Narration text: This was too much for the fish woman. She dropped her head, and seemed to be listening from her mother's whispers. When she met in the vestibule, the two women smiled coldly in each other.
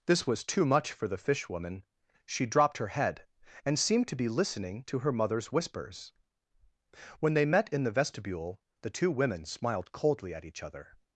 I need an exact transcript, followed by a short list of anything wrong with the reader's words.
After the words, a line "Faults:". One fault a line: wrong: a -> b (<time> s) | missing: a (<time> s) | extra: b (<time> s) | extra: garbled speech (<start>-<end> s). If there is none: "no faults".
This was too much for the fish woman. She dropped her head, and seemed to be listening to her mother's whispers. When they met in the vestibule, the two women smiled coldly at each other.
Faults:
wrong: from -> to (4.8 s)
wrong: she -> they (7.3 s)
wrong: in -> at (10.3 s)